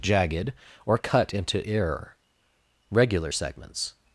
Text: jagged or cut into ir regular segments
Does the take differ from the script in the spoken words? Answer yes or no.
yes